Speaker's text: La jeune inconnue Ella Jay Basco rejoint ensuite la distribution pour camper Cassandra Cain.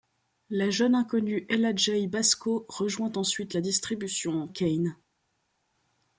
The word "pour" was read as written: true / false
false